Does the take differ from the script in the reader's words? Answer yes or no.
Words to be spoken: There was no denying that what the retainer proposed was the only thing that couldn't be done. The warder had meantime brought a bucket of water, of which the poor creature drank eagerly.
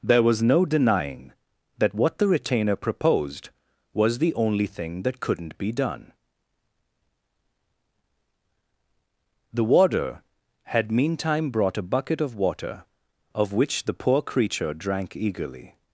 no